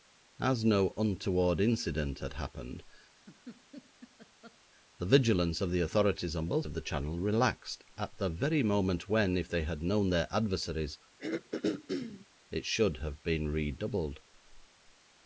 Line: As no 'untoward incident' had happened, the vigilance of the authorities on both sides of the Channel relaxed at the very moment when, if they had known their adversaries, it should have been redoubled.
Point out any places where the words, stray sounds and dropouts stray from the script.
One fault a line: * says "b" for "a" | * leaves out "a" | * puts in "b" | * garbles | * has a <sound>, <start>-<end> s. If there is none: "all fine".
* has a laugh, 3.1-4.6 s
* leaves out "sides"
* has a throat clearing, 11.2-12.3 s